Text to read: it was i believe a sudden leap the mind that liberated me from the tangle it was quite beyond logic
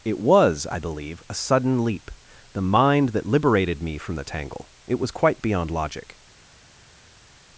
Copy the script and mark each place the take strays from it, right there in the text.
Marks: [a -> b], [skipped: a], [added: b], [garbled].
it was i believe a sudden leap the mind that liberated me from the tangle it was quite beyond logic